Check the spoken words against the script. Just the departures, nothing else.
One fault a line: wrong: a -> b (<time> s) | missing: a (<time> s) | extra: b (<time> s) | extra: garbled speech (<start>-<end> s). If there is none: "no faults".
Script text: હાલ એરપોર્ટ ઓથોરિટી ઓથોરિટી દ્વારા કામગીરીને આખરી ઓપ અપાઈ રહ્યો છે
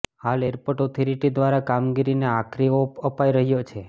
missing: ઓથોરિટી (1.3 s)